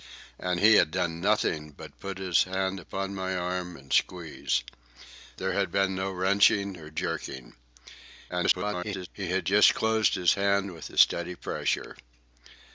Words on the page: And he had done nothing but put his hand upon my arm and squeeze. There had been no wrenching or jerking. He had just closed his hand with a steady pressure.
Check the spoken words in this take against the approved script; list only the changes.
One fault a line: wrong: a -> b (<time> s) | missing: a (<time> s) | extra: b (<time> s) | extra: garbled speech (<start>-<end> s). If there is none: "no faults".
extra: garbled speech (8.3-9.1 s)